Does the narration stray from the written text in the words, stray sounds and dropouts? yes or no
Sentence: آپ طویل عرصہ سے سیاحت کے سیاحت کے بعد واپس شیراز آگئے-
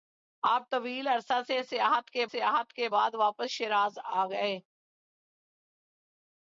no